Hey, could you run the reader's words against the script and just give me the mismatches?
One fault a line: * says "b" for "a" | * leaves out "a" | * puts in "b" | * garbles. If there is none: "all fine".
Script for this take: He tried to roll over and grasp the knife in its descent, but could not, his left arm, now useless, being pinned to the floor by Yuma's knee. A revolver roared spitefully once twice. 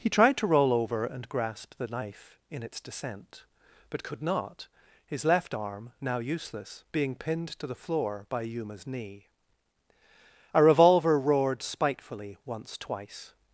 all fine